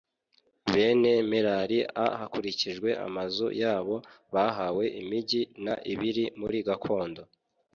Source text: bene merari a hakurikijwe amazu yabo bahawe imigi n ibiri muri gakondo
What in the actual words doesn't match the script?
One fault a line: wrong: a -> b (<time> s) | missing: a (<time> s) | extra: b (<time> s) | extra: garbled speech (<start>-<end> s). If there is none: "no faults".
no faults